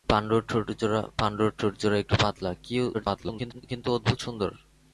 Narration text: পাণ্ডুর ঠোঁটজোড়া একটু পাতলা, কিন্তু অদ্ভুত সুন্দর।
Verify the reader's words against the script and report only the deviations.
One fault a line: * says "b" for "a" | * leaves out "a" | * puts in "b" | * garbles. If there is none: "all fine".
* garbles